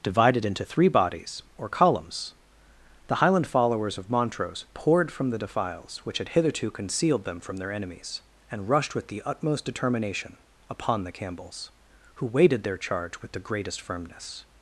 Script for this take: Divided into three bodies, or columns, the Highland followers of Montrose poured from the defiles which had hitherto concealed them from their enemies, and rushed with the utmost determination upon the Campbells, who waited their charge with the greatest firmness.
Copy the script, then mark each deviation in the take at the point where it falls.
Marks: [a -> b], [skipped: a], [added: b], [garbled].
Divided into three bodies, or columns, the Highland followers of Montrose poured from the defiles which had hitherto concealed them from their enemies, and rushed with the utmost determination upon the Campbells, who waited their charge with the greatest firmness.